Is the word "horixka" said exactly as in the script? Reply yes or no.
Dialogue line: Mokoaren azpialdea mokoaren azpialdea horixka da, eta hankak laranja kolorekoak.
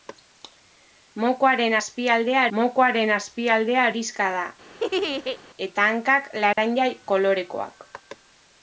yes